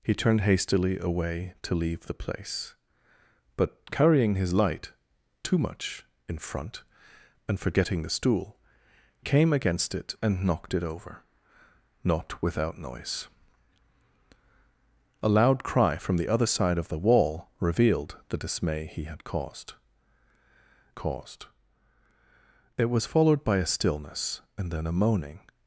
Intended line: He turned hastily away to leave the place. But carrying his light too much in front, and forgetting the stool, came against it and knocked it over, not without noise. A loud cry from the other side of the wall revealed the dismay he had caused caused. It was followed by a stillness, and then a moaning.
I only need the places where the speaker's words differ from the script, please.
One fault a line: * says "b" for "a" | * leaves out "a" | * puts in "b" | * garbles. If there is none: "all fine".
all fine